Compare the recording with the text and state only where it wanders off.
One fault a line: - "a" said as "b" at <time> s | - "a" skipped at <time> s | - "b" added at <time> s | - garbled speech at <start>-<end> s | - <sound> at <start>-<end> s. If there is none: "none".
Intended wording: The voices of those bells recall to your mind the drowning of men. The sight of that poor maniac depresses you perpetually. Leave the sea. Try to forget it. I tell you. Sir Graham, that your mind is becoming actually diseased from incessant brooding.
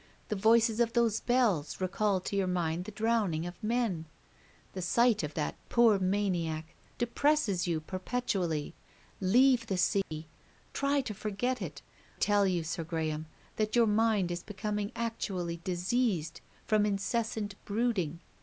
- dropout at 10.0-10.1 s
- "I" skipped at 11.8 s